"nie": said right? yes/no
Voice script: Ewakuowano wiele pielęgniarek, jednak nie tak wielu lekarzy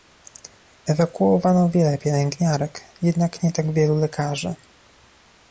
yes